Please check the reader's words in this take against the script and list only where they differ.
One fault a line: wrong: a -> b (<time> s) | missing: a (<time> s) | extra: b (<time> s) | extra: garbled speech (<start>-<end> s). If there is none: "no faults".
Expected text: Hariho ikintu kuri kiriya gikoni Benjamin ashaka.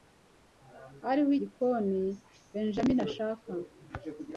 missing: ikintu kuri kiriya (1.3 s)